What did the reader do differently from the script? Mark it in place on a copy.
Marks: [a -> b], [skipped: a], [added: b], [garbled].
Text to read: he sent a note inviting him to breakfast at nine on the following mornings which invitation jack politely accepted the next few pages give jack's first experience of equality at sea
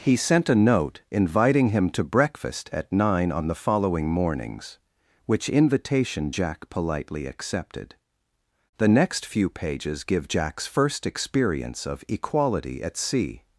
he sent a note inviting him to breakfast at nine on the following mornings which invitation jack politely accepted the next few pages give jack's first experience of equality at sea